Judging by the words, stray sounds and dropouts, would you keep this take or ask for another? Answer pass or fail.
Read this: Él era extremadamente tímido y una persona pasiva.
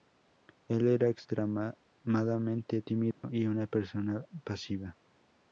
fail